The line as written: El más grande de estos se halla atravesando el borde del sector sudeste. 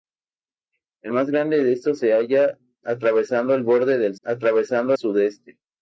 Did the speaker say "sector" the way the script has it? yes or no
no